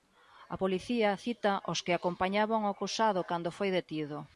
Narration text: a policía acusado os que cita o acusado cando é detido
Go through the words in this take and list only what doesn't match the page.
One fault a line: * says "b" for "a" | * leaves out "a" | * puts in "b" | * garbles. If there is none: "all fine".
* says "cita" for "acusado"
* says "acompañaban" for "cita"
* says "foi" for "é"